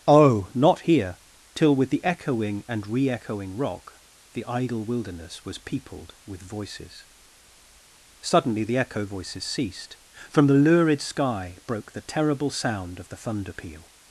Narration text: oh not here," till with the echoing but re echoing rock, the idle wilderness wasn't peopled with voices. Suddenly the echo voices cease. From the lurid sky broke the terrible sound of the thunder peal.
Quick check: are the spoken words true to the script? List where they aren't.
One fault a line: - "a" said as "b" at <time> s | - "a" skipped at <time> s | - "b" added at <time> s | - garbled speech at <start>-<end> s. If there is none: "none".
- "but" said as "and" at 2.7 s
- "wasn't" said as "was" at 5.5 s
- "cease" said as "ceased" at 9.4 s